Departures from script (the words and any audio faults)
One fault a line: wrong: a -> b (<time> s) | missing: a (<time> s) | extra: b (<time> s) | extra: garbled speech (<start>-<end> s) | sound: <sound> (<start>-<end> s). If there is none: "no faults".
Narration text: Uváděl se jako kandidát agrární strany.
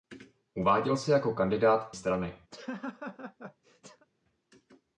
missing: agrární (1.9 s)
sound: laugh (2.5-4.1 s)